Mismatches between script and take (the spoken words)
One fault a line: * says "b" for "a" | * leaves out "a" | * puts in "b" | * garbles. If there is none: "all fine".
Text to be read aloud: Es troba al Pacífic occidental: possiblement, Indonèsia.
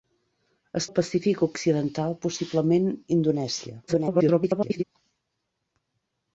* leaves out "troba"
* garbles